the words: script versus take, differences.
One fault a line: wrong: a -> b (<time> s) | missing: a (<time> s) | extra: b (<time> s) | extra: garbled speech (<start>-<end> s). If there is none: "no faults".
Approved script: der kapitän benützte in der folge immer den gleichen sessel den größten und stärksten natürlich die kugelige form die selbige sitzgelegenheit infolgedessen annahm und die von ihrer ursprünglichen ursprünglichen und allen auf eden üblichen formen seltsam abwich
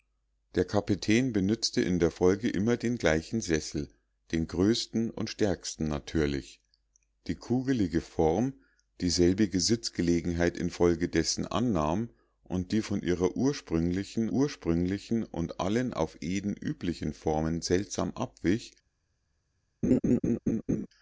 no faults